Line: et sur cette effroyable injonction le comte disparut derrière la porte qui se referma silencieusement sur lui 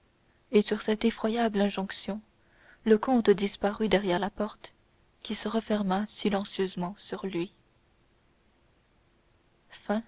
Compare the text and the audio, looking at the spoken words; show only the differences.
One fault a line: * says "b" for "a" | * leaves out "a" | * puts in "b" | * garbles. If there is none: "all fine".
all fine